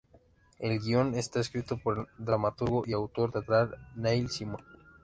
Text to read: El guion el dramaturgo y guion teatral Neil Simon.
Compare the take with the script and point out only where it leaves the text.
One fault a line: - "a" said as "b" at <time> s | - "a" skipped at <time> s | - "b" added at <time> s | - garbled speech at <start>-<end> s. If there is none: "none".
- "está escrito por" added at 1.1 s
- "guion" said as "autor" at 2.9 s